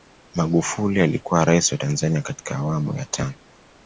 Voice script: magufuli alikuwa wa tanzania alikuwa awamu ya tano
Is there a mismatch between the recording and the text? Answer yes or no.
yes